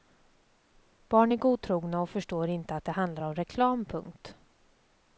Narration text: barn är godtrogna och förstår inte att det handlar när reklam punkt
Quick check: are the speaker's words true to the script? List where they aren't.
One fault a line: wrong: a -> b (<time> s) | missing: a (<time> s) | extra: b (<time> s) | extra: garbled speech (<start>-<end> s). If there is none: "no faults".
wrong: när -> om (3.2 s)